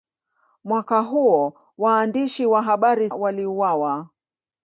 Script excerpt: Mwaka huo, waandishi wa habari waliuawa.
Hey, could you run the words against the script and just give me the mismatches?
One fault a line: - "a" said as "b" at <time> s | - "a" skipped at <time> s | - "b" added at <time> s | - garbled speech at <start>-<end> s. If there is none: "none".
none